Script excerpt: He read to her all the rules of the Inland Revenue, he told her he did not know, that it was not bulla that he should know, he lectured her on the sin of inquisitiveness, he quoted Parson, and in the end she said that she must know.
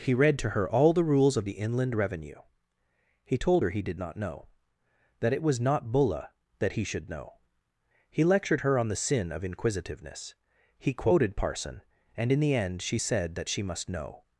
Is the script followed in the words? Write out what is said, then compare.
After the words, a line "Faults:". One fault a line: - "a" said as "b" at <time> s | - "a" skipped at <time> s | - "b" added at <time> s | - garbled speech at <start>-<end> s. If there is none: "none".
He read to her all the rules of the Inland Revenue, he told her he did not know, that it was not bulla that he should know, he lectured her on the sin of inquisitiveness, he quoted Parson, and in the end she said that she must know.
Faults:
none